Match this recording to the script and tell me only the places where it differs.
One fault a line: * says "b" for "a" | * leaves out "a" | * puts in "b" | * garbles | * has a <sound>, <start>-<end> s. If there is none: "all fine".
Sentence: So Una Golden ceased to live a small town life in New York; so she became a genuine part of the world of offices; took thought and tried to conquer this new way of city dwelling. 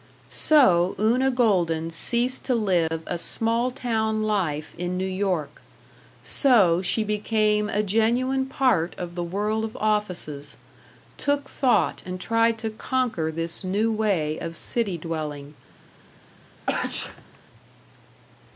* has a dropout, 2.9-2.9 s
* has a sneeze, 16.7-17.4 s